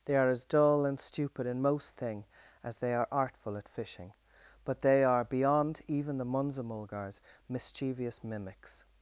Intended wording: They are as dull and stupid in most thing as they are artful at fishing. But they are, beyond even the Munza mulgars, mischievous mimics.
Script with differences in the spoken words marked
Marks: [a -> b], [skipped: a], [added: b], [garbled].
They are as dull and stupid in most thing as they are artful at fishing. But they are, beyond even the Munza mulgars, mischievous mimics.